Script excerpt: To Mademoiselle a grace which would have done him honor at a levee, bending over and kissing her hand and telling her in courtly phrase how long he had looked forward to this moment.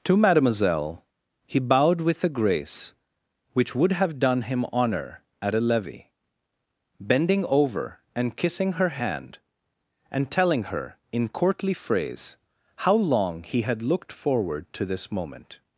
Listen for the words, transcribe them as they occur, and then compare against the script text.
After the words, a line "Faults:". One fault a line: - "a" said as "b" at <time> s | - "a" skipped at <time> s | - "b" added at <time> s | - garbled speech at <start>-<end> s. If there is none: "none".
To Mademoiselle he bowed with a grace which would have done him honor at a levee, bending over and kissing her hand and telling her in courtly phrase how long he had looked forward to this moment.
Faults:
- "he bowed with" added at 1.4 s